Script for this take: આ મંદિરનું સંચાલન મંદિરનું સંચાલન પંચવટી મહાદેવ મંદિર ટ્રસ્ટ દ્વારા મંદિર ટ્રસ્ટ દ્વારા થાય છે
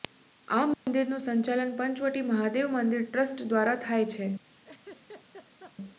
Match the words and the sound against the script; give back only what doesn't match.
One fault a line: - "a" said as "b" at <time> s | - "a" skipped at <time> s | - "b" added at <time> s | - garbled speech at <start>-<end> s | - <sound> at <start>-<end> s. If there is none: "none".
- dropout at 0.7-0.9 s
- "મંદિરનું સંચાલન" skipped at 1.7 s
- "મંદિર ટ્રસ્ટ દ્વારા" skipped at 3.8 s
- laugh at 4.6-5.8 s